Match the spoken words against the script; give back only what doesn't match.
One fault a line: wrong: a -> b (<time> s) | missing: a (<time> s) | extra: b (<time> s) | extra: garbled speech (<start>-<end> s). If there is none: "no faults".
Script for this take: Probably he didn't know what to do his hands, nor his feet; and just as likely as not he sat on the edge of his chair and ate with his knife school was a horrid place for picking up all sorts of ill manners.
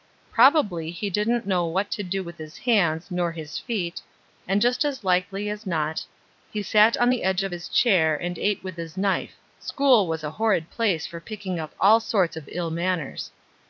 extra: with (2.2 s)